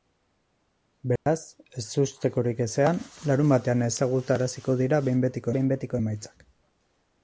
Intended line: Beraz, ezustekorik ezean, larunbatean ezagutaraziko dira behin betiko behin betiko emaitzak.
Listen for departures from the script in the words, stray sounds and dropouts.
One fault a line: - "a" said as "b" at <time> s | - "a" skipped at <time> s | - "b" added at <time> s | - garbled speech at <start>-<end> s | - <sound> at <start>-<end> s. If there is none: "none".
- dropout at 1.2-1.3 s